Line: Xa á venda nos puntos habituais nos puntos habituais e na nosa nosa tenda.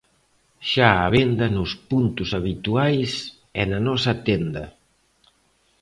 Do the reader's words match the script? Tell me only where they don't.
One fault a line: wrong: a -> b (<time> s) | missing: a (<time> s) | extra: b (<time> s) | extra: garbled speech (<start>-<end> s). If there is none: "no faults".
missing: nos puntos habituais (3.1 s)
missing: nosa (4.1 s)